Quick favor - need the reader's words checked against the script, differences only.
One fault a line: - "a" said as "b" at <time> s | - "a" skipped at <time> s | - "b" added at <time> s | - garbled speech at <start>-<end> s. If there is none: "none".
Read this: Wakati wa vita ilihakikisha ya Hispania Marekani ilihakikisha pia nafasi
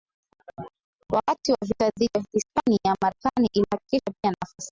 - "ilihakikisha" said as "dhidi" at 1.9 s